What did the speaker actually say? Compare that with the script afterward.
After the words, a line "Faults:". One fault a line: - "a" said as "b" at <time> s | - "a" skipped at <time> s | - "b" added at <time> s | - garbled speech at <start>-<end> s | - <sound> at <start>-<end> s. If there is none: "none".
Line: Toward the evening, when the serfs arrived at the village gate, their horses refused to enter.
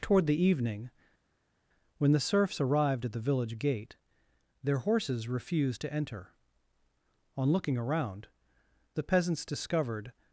Toward the evening, when the serfs arrived at the village gate, their horses refused to enter. On looking around, the peasants discovered
Faults:
- "On looking around the peasants discovered" added at 7.4 s